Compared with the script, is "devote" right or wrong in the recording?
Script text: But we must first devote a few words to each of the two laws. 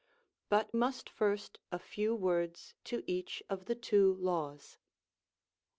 wrong